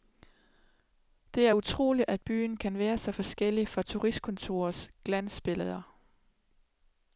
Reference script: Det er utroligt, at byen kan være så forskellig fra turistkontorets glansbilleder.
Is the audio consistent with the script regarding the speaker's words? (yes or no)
yes